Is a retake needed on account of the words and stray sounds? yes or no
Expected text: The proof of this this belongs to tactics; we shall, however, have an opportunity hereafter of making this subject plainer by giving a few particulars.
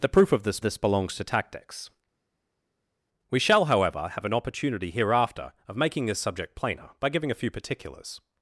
no